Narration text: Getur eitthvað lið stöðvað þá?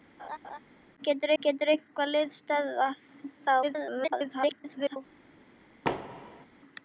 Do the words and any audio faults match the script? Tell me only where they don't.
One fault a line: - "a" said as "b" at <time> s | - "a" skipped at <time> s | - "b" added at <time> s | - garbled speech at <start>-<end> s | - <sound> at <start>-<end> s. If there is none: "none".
- laugh at 0.2-0.6 s
- "getur" added at 1.4 s
- garbled speech at 3.6-5.0 s
- thud at 5.8-6.5 s